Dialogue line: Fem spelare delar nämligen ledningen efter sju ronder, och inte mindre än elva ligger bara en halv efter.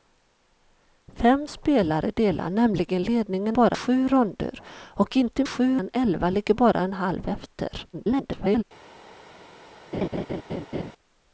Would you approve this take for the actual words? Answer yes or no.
no